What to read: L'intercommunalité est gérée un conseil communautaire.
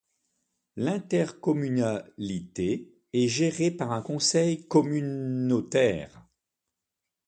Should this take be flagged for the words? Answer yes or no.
yes